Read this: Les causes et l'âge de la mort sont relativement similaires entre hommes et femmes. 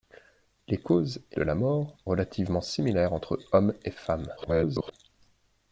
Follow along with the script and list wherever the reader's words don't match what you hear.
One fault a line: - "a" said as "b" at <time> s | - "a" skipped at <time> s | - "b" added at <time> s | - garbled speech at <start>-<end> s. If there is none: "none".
- "l'âge" skipped at 1.4 s
- "sont" skipped at 1.9 s
- garbled speech at 4.4-4.9 s